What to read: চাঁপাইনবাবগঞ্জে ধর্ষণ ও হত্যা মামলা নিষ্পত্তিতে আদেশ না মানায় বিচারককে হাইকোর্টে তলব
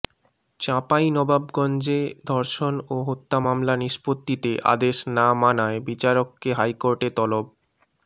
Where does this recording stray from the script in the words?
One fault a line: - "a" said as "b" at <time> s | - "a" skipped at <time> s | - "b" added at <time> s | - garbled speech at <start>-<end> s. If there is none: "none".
none